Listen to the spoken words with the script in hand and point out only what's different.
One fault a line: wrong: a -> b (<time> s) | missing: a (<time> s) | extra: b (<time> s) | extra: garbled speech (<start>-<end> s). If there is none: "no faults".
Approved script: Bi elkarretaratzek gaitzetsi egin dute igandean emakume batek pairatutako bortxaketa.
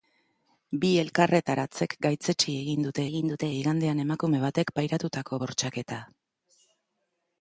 extra: egin dute (3.1 s)